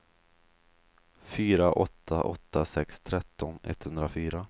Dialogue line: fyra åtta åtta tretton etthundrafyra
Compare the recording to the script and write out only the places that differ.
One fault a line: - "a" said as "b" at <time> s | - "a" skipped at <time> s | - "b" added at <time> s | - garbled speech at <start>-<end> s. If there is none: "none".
- "sex" added at 2.6 s